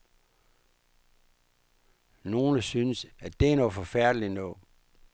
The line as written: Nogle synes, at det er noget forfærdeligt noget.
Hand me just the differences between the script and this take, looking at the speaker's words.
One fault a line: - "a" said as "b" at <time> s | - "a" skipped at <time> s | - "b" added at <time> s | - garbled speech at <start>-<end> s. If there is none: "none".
none